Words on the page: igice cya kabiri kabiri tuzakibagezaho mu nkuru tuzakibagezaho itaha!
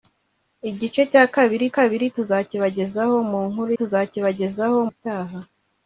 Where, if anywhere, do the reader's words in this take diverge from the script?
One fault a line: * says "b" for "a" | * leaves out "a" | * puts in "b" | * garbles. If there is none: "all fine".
all fine